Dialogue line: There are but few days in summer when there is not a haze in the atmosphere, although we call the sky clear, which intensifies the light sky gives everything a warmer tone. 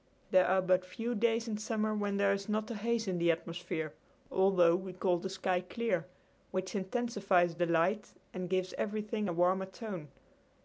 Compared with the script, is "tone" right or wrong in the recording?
right